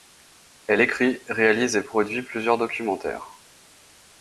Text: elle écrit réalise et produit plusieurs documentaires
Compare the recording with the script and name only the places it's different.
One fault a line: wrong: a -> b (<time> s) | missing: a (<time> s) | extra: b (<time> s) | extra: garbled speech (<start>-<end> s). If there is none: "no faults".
no faults